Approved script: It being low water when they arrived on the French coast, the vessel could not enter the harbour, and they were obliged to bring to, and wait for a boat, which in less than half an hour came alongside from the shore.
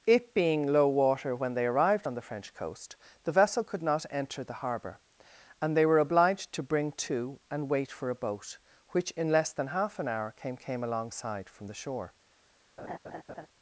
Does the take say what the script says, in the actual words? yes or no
no